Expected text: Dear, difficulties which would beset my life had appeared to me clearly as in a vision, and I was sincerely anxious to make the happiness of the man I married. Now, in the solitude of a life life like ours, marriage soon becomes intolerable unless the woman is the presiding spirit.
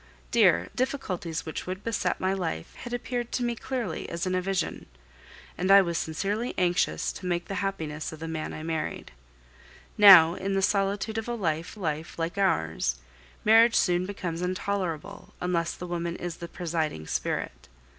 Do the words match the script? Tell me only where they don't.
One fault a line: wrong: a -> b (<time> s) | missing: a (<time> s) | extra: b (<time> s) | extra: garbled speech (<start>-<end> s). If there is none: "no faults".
no faults